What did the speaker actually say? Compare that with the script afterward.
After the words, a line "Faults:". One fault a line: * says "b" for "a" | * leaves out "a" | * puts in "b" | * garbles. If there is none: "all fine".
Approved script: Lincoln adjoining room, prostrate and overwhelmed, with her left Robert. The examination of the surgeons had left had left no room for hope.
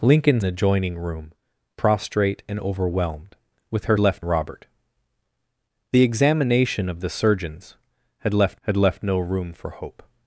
Lincoln adjoining room, prostrate and overwhelmed, with her left Robert. The examination of the surgeons had left had left no room for hope.
Faults:
all fine